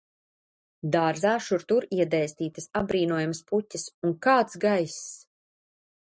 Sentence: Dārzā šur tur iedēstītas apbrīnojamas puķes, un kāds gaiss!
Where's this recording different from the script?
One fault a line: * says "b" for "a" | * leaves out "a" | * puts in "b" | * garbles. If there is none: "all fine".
all fine